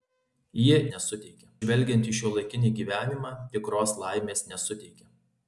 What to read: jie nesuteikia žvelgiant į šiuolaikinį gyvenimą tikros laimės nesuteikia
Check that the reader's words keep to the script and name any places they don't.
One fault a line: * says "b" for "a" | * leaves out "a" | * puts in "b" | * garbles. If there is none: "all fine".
all fine